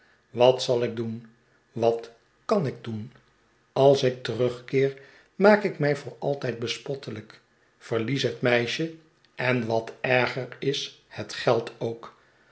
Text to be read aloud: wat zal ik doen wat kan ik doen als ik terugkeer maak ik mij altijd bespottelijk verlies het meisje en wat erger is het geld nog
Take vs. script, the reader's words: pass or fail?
fail